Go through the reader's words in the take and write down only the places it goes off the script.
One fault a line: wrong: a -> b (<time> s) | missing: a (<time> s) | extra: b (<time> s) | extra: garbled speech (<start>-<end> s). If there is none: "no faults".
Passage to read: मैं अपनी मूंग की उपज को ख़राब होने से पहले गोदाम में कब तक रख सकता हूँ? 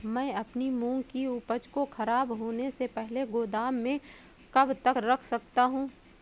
no faults